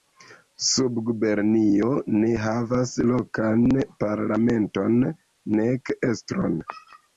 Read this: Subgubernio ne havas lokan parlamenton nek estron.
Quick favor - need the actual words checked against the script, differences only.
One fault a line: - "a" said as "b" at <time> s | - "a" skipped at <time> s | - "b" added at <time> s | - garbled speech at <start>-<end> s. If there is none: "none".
none